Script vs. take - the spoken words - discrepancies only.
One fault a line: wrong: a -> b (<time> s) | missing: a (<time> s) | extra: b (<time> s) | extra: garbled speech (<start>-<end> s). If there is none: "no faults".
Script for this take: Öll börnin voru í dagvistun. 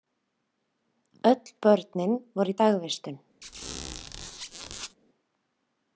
no faults